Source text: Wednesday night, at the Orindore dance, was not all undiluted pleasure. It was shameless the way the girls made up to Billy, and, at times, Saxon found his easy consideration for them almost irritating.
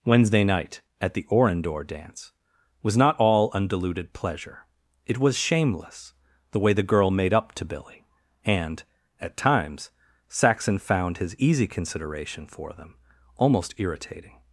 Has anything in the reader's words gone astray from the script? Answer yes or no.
yes